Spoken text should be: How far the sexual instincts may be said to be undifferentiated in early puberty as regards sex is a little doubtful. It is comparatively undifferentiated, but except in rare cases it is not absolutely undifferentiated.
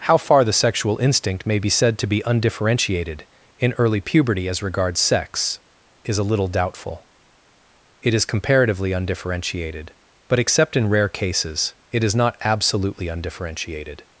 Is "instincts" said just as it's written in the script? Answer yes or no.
no